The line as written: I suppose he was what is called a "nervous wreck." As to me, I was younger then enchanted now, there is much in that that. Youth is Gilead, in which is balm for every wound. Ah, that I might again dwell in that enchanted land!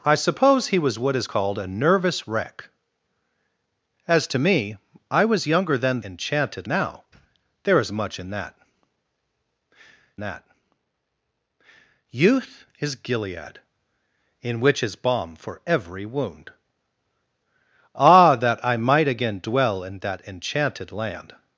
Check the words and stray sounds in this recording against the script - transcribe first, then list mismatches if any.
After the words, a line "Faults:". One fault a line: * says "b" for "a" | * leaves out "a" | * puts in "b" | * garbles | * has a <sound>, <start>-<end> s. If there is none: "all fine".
I suppose he was what is called a "nervous wreck." As to me, I was younger then enchanted now, there is much in that that. Youth is Gilead, in which is balm for every wound. Ah, that I might again dwell in that enchanted land!
Faults:
all fine